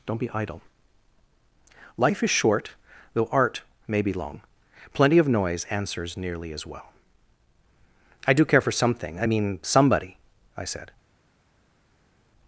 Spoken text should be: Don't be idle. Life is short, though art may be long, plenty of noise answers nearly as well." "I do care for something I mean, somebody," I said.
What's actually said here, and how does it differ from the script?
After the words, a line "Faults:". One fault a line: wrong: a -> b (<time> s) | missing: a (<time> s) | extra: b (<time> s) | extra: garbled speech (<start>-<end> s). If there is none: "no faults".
Don't be idle. Life is short, though art may be long, plenty of noise answers nearly as well." "I do care for something I mean, somebody," I said.
Faults:
no faults